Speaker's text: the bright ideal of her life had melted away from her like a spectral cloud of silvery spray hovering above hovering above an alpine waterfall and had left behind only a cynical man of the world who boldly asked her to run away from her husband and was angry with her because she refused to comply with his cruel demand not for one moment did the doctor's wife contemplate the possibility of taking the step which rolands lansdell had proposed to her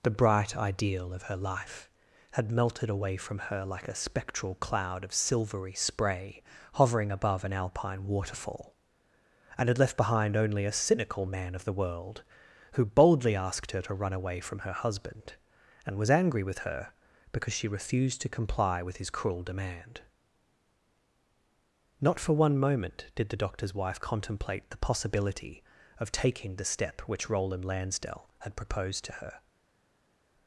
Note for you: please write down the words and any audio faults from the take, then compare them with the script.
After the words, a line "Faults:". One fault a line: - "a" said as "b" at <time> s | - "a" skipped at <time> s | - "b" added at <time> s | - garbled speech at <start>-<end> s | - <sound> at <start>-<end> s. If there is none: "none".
the bright ideal of her life had melted away from her like a spectral cloud of silvery spray hovering above an alpine waterfall and had left behind only a cynical man of the world who boldly asked her to run away from her husband and was angry with her because she refused to comply with his cruel demand not for one moment did the doctor's wife contemplate the possibility of taking the step which roland lansdell had proposed to her
Faults:
- "hovering above" skipped at 7.4 s
- "rolands" said as "roland" at 27.3 s